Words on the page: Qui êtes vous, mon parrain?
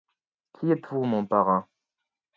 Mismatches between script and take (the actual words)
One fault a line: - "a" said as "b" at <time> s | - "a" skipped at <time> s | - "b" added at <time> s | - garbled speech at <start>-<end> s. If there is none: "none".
none